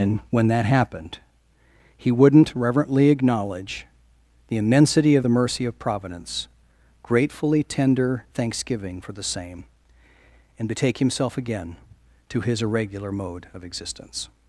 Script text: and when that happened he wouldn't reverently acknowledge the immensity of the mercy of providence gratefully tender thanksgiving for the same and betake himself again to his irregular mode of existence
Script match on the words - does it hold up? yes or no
yes